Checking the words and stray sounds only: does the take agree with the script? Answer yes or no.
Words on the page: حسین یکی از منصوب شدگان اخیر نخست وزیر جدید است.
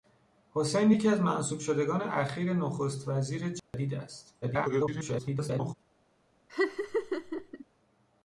no